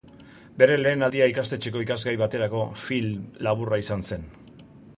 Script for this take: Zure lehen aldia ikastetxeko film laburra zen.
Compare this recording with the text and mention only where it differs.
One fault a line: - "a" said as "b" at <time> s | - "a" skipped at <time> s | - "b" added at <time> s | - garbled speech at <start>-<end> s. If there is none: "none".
- "Zure" said as "Bere" at 0.6 s
- "ikasgai baterako" added at 1.8 s
- "izan" added at 3.9 s